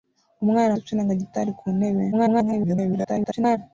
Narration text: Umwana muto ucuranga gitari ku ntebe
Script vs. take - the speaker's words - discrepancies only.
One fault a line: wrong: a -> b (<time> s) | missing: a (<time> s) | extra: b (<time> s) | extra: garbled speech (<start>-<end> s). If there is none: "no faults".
missing: muto (0.7 s)
extra: garbled speech (2.1-3.6 s)